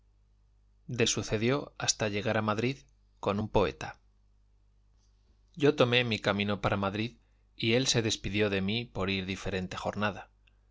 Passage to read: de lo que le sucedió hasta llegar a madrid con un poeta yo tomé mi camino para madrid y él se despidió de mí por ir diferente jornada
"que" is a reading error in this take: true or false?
true